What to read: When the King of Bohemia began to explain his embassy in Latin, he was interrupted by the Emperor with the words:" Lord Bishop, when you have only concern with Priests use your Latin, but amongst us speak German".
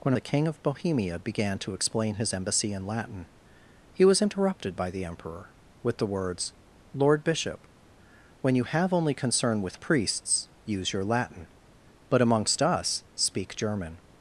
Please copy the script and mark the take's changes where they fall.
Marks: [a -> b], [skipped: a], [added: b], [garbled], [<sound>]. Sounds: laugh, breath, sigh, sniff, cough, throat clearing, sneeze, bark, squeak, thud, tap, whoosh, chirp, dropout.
When the King of Bohemia began to explain his embassy in Latin, he was interrupted by the Emperor with the words:" Lord Bishop, when you have only concern with Priests use your Latin, but amongst us speak German".